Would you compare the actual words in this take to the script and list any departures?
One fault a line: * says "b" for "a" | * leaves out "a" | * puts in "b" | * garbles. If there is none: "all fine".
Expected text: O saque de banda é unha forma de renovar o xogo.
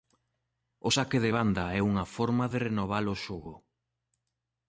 all fine